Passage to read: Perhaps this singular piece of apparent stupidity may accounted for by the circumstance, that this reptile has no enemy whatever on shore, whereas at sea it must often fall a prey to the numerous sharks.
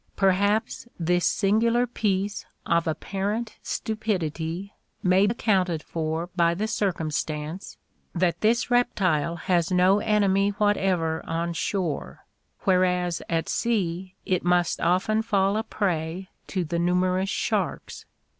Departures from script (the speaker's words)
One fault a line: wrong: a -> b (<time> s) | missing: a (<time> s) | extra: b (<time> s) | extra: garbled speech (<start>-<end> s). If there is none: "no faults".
no faults